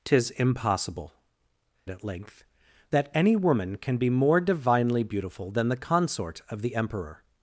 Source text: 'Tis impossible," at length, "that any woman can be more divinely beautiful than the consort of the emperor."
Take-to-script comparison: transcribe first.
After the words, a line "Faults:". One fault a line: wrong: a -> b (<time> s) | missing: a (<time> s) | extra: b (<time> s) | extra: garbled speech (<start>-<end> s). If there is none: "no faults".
'Tis impossible," at length, "that any woman can be more divinely beautiful than the consort of the emperor."
Faults:
no faults